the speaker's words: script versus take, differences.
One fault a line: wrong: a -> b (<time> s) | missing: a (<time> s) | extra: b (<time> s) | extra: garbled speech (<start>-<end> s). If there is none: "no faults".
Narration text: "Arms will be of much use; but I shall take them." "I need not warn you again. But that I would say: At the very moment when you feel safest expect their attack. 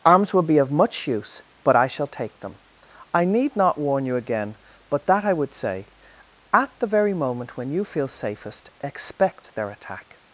no faults